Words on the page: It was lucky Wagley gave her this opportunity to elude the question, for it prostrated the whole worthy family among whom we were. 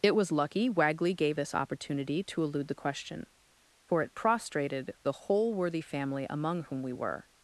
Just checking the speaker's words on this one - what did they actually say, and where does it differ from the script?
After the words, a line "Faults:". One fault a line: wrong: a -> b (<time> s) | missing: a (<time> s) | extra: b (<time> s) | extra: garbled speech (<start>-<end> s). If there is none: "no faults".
It was lucky Wagley gave this opportunity to elude the question, for it prostrated the whole worthy family among whom we were.
Faults:
missing: her (1.4 s)